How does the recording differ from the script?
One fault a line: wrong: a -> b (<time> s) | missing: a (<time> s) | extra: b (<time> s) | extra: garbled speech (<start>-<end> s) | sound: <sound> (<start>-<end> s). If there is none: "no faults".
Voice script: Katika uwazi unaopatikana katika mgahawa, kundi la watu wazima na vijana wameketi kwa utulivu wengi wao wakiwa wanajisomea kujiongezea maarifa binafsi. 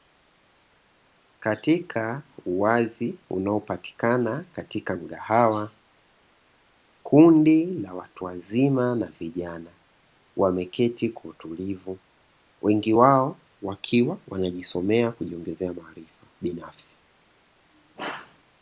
no faults